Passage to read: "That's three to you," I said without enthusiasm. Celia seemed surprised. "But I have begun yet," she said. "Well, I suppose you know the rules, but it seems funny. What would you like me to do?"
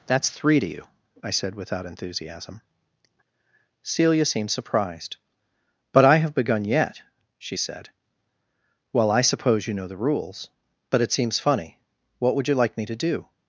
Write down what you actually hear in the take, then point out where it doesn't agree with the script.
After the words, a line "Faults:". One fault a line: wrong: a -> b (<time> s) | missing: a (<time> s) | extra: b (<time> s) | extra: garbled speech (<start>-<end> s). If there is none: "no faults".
"That's three to you," I said without enthusiasm. Celia seemed surprised. "But I have begun yet," she said. "Well, I suppose you know the rules, but it seems funny. What would you like me to do?"
Faults:
no faults